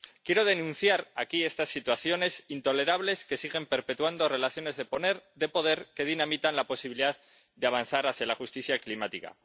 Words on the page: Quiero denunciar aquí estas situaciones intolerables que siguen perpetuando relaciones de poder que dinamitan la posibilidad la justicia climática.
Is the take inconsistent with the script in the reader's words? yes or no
yes